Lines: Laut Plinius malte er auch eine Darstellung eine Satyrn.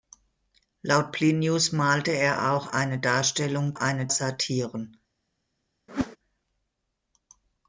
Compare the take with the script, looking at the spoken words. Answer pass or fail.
pass